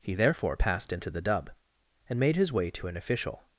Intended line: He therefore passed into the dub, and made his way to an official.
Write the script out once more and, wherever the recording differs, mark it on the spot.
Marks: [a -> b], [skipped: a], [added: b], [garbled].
He therefore passed into the dub, and made his way to an official.